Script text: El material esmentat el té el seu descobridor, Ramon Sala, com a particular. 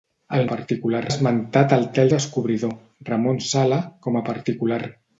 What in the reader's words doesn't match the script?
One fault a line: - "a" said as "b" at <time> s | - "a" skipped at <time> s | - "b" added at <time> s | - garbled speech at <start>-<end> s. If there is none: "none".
- "material" said as "particular" at 0.5 s
- "seu" skipped at 2.1 s